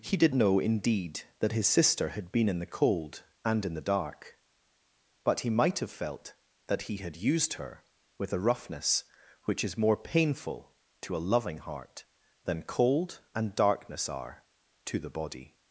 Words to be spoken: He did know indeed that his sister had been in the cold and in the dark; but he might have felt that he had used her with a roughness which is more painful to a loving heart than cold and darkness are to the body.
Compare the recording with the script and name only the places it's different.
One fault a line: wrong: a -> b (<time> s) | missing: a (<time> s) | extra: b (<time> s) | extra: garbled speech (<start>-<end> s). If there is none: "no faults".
no faults